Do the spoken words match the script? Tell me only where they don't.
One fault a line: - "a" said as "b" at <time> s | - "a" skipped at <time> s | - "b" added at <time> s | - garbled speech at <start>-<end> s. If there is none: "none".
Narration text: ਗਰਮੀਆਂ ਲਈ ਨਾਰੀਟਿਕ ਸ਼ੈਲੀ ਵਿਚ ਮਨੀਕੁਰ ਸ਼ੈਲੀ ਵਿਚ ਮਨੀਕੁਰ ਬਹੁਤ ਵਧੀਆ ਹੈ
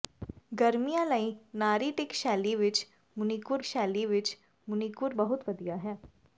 none